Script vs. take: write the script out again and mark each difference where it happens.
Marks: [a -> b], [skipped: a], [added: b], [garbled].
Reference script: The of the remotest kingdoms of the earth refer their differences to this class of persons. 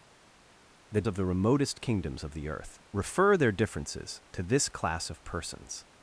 The of the remotest kingdoms of the earth refer their differences to this class of persons.